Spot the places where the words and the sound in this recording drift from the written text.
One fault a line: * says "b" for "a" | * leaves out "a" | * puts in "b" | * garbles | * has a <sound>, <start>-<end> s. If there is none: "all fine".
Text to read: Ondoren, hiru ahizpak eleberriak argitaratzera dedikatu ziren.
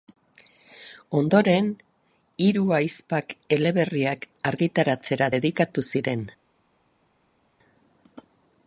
all fine